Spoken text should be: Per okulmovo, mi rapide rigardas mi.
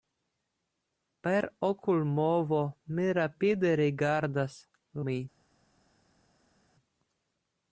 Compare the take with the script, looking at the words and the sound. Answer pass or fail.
pass